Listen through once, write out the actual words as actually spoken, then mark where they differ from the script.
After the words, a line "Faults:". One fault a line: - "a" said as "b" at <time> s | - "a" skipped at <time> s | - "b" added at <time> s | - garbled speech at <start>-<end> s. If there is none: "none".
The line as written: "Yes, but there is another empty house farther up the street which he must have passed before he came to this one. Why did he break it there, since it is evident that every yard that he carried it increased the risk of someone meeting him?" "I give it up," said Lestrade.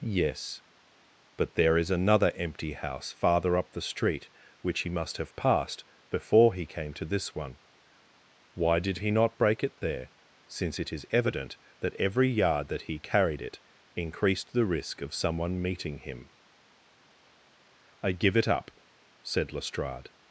"Yes, but there is another empty house farther up the street which he must have passed before he came to this one. Why did he not break it there, since it is evident that every yard that he carried it increased the risk of someone meeting him?" "I give it up," said Lestrade.
Faults:
- "not" added at 9.1 s